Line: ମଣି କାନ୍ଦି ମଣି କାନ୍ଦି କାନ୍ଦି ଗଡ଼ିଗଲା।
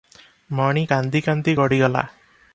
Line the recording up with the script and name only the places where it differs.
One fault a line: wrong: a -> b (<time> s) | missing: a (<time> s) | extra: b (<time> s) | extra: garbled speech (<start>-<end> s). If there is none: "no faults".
missing: ମଣି କାନ୍ଦି (1.2 s)